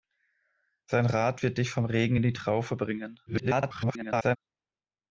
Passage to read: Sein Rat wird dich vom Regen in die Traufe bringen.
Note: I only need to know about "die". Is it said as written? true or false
true